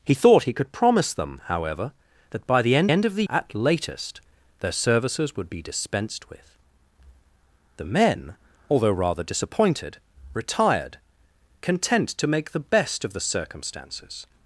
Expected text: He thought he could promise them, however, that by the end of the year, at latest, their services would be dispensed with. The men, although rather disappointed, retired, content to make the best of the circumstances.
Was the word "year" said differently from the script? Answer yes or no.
yes